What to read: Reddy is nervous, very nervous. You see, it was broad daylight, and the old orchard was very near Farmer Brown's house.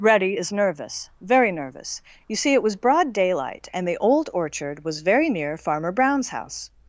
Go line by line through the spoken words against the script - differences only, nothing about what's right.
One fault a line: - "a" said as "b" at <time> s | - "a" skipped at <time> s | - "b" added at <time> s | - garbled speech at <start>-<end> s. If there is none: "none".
none